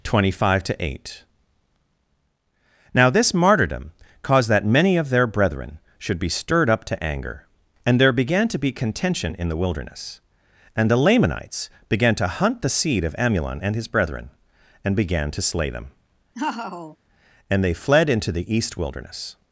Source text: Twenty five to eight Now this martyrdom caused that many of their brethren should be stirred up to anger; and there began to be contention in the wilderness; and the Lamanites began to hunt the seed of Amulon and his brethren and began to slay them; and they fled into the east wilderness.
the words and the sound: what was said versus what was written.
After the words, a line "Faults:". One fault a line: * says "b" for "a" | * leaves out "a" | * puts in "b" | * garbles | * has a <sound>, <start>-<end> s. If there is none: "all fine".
Twenty five to eight Now this martyrdom caused that many of their brethren should be stirred up to anger; and there began to be contention in the wilderness; and the Lamanites began to hunt the seed of Amulon and his brethren and began to slay them; and they fled into the east wilderness.
Faults:
* has a laugh, 16.3-17.0 s